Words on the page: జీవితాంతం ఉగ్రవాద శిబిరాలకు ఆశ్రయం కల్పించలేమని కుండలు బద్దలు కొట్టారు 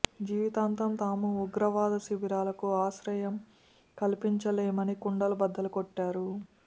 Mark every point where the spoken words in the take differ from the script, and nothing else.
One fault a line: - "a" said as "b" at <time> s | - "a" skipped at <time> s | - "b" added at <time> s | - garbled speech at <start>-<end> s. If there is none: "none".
- "తాము" added at 1.0 s